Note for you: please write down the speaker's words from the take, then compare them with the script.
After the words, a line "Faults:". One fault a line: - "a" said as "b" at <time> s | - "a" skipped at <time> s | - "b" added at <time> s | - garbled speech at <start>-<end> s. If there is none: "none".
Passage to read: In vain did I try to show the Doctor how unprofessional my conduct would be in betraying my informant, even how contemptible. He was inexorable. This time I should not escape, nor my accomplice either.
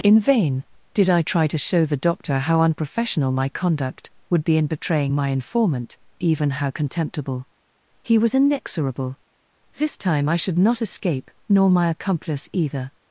In vain did I try to show the Doctor how unprofessional my conduct would be in betraying my informant, even how contemptible. He was inexorable. This time I should not escape, nor my accomplice either.
Faults:
none